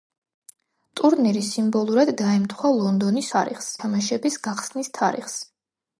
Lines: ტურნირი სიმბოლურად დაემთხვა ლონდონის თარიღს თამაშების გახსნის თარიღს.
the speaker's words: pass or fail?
pass